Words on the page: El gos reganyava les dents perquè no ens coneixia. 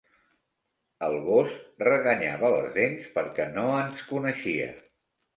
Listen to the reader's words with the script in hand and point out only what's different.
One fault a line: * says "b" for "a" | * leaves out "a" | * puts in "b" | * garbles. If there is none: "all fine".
all fine